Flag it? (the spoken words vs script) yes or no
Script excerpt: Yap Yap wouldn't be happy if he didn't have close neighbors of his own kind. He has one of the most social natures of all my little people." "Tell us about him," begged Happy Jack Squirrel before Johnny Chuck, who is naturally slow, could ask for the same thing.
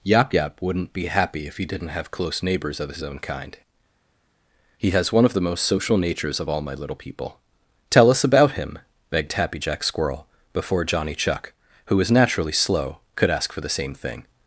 yes